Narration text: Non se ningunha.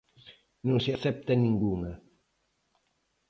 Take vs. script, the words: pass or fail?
fail